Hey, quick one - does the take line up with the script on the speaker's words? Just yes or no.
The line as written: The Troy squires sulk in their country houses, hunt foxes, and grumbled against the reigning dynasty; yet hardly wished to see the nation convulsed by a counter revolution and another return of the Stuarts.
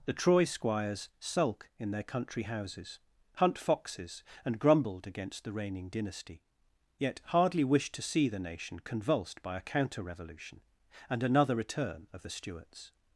yes